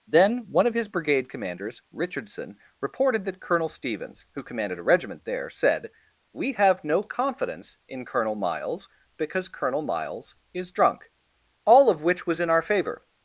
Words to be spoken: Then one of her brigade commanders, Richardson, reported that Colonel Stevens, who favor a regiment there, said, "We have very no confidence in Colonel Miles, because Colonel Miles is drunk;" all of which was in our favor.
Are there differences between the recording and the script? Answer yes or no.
yes